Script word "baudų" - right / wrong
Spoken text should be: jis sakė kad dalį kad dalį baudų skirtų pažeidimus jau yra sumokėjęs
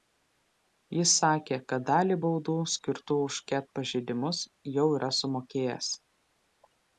wrong